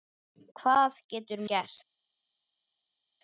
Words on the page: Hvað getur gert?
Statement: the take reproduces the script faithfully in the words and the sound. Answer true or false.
true